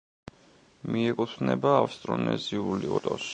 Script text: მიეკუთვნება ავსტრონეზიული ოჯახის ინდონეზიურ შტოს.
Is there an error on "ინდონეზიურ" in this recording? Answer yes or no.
yes